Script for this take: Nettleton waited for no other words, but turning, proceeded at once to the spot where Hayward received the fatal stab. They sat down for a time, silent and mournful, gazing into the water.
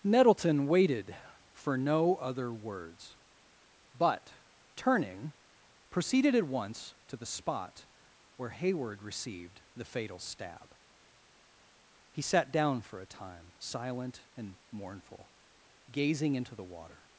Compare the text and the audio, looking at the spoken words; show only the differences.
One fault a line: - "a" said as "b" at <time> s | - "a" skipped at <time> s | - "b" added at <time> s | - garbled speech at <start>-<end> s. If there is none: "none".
- "They" said as "He" at 12.1 s